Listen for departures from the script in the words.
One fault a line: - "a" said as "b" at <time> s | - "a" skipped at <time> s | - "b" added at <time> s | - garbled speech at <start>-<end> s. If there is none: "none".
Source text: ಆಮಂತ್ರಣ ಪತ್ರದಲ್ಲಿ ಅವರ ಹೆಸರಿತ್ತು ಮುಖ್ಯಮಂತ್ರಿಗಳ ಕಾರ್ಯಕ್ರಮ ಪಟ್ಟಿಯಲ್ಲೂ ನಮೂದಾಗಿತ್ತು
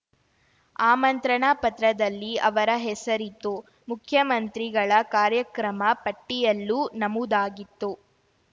none